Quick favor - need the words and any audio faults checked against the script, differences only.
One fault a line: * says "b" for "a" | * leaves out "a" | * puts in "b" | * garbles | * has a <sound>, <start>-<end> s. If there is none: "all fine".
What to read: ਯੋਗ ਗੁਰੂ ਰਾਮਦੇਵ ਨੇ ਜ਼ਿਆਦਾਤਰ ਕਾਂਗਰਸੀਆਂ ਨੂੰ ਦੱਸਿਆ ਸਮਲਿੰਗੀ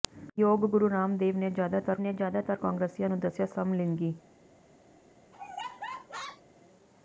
* puts in "ਨੇ ਜ਼ਿਆਦਾਤਰ"
* has a laugh, 5.3-6.4 s